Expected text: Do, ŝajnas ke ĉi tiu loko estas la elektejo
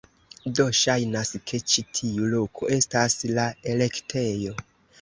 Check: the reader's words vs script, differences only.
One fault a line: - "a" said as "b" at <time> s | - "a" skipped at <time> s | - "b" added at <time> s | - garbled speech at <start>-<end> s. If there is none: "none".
none